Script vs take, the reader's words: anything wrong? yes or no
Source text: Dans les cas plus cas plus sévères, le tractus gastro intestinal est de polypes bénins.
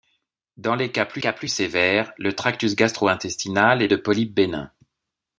no